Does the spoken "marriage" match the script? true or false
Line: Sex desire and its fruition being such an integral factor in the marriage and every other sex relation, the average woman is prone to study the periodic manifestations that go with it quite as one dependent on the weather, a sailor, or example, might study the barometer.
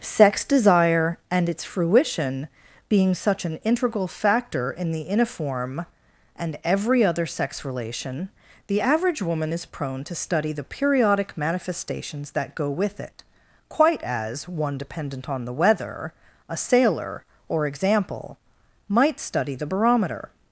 false